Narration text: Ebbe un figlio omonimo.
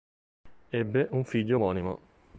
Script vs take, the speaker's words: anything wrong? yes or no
no